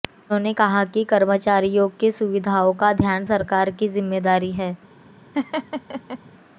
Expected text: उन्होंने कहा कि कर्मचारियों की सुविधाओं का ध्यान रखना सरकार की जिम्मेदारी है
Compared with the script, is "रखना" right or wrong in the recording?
wrong